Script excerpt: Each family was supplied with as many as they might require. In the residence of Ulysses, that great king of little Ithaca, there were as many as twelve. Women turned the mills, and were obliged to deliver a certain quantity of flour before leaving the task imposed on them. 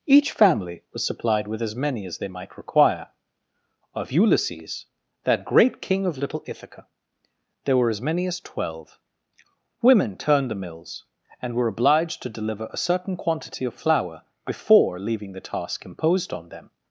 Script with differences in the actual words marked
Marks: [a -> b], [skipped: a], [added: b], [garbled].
Each family was supplied with as many as they might require. [skipped: In the residence] of Ulysses, that great king of little Ithaca, there were as many as twelve. Women turned the mills, and were obliged to deliver a certain quantity of flour before leaving the task imposed on them.